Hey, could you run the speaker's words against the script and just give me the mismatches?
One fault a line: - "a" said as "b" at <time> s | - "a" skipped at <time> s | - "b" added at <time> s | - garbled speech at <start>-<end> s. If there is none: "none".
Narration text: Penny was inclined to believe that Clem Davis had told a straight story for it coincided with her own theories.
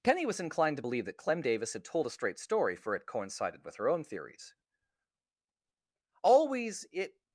- "Always it" added at 6.2 s